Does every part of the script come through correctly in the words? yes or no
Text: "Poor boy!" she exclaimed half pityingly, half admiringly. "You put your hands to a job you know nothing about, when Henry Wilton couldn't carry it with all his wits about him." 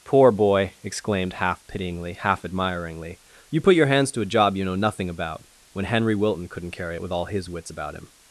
no